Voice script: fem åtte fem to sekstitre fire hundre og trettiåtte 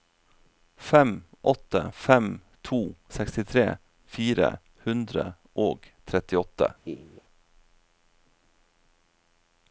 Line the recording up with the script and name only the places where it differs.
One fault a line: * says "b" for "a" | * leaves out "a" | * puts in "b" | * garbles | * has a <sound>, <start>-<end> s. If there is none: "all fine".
* has a laugh, 6.8-7.2 s